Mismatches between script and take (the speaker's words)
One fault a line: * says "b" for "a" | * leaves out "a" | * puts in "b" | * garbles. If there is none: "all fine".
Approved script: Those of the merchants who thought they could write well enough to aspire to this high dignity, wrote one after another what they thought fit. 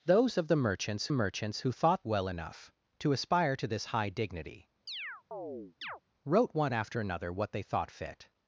* puts in "merchants"
* leaves out "they could write"